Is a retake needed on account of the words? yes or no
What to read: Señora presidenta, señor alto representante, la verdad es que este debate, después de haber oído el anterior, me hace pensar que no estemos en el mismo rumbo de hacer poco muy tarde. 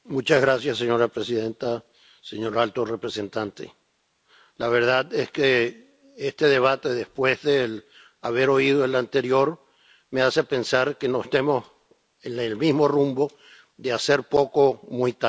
no